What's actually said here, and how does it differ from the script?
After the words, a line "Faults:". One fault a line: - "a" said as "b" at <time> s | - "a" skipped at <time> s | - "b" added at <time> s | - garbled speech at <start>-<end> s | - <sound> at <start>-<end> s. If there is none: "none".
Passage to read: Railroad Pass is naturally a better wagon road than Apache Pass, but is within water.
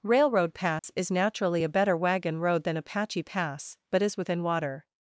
Railroad Pass is naturally a better wagon road than Apache Pass, but is within water.
Faults:
- dropout at 0.8-0.8 s